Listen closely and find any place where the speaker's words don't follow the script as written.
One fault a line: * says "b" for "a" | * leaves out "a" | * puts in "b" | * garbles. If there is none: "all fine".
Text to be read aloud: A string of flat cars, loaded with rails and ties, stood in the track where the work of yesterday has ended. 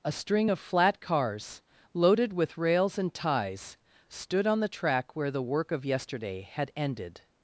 * says "on" for "in"
* says "had" for "has"